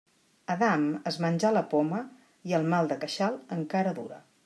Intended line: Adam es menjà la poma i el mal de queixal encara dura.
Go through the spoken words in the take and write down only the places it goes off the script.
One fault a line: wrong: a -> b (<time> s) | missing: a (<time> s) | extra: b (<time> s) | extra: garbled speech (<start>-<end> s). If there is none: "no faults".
no faults